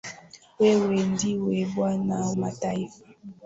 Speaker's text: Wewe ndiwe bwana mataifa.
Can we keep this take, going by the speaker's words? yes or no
yes